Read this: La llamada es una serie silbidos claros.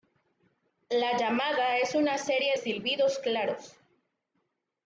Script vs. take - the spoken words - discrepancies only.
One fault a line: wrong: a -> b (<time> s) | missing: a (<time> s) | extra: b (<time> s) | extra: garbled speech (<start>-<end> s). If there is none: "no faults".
no faults